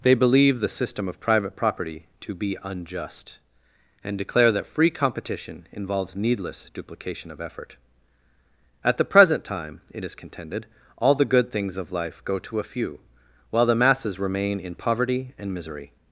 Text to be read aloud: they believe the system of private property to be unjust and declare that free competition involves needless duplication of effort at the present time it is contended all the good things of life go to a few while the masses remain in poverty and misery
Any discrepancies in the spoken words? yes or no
no